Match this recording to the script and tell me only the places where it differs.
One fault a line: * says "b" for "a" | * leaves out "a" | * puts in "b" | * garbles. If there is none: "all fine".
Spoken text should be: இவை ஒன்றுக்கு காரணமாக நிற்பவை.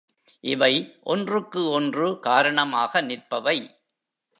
* puts in "ஒன்று"